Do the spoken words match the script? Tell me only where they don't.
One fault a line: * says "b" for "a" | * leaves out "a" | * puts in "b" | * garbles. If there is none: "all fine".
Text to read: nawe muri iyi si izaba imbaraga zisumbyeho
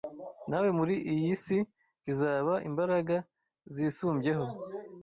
all fine